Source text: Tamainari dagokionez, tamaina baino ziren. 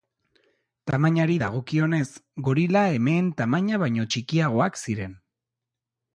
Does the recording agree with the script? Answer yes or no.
no